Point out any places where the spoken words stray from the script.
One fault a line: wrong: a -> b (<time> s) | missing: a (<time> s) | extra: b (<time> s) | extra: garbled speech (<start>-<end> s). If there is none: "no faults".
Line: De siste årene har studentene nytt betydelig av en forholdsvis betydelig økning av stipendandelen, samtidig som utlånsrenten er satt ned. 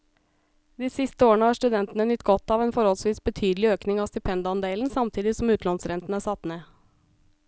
wrong: betydelig -> godt (2.3 s)